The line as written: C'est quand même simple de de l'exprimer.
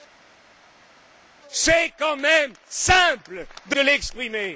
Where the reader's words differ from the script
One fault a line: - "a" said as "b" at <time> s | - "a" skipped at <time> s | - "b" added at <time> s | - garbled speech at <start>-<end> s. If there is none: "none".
none